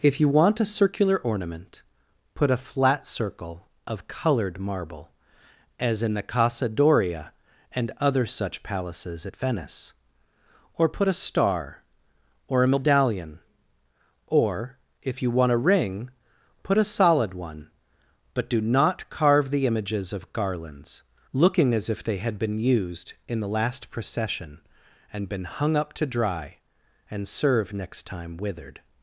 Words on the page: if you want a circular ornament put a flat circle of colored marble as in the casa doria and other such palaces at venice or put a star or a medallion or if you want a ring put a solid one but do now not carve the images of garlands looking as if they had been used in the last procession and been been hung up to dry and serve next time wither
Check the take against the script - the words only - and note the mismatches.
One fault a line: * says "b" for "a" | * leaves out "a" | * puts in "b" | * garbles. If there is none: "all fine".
* leaves out "now"
* leaves out "been"
* says "withered" for "wither"